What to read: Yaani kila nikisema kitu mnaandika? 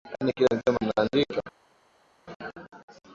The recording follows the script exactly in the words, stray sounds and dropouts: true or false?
false